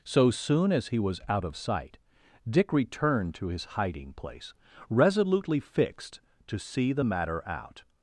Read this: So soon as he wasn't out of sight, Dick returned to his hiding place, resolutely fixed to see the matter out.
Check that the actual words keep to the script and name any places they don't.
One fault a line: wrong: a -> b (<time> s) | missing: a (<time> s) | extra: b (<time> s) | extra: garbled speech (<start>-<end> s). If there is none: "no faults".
wrong: wasn't -> was (1.0 s)